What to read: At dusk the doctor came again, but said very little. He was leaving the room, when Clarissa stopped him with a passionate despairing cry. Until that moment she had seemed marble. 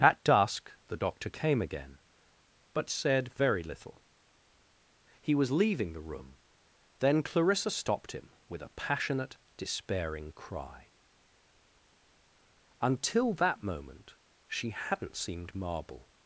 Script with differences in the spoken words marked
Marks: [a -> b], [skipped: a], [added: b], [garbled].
At dusk the doctor came again, but said very little. He was leaving the room, [when -> then] Clarissa stopped him with a passionate despairing cry. Until that moment she [had -> hadn't] seemed marble.